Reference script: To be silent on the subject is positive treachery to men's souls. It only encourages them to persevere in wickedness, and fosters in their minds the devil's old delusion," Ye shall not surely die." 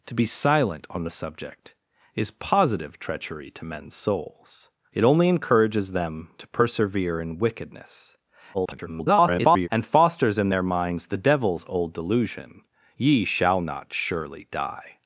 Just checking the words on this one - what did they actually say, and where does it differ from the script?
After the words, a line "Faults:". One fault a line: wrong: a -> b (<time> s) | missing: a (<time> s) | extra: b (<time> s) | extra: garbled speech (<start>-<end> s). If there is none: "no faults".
To be silent on the subject is positive treachery to men's souls. It only encourages them to persevere in wickedness, [garbled] and fosters in their minds the devil's old delusion," Ye shall not surely die."
Faults:
extra: garbled speech (8.5-9.7 s)